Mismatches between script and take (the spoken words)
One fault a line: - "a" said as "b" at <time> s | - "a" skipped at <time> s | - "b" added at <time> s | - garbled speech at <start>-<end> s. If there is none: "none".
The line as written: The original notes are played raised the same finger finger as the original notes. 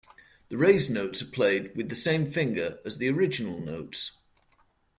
- "original" said as "raised" at 0.6 s
- "raised" said as "with" at 1.8 s
- "finger" skipped at 2.8 s